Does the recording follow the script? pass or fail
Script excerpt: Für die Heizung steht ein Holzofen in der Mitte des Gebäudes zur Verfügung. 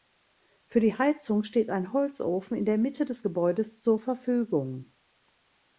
pass